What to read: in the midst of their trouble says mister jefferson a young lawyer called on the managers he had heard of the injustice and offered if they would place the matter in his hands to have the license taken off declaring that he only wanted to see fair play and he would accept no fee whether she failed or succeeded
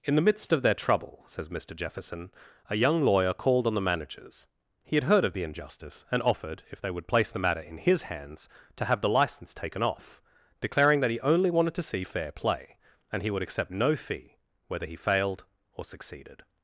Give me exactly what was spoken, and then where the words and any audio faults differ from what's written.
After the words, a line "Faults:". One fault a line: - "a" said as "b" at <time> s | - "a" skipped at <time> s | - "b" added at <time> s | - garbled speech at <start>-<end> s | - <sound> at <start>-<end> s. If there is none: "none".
in the midst of their trouble says mister jefferson a young lawyer called on the managers he had heard of the injustice and offered if they would place the matter in his hands to have the license taken off declaring that he only wanted to see fair play and he would accept no fee whether he failed or succeeded
Faults:
- "she" said as "he" at 14.9 s